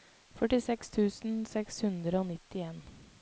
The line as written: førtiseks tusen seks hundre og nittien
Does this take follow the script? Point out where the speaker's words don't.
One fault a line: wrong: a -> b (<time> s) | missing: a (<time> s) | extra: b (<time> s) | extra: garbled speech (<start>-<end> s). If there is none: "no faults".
no faults